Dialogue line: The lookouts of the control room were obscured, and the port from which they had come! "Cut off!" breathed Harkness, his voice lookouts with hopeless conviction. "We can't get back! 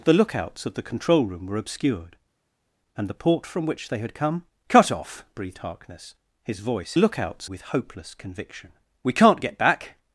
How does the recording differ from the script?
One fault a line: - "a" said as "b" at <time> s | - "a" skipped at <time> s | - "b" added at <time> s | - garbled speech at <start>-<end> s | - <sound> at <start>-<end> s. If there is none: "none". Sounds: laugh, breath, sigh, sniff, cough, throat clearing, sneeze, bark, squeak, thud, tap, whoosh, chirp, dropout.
none